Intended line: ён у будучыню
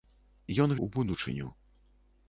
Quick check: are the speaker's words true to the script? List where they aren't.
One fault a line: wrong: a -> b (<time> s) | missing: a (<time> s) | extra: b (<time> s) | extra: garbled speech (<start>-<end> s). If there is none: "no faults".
no faults